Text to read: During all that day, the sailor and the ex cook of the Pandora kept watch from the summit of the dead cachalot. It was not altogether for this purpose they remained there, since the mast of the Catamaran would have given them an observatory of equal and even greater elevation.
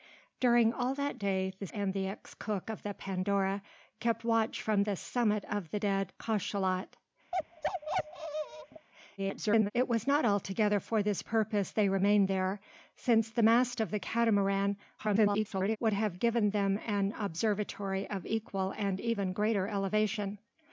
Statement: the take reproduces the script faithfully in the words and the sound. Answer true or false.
false